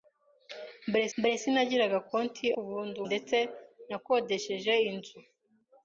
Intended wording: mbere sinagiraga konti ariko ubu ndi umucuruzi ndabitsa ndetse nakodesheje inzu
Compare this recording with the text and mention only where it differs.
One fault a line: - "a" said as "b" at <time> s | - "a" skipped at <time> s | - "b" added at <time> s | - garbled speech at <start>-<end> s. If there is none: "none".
- "mbere" added at 1.2 s
- "ariko" skipped at 2.5 s
- "umucuruzi ndabitsa" skipped at 3.0 s